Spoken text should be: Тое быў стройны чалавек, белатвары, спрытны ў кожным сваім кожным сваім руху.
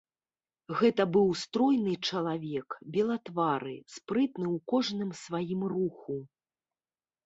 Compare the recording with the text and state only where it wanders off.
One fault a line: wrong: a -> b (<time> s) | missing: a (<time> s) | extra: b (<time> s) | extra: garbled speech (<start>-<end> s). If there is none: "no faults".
wrong: Тое -> Гэта (0.8 s)
missing: кожным сваім (5.6 s)